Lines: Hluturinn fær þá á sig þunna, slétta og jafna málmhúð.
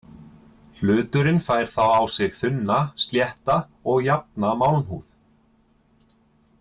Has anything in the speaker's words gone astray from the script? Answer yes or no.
no